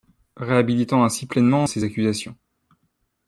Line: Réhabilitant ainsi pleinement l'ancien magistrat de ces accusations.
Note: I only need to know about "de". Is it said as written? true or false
false